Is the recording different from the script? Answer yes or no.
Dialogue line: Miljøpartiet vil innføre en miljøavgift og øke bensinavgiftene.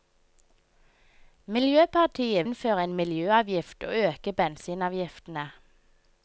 yes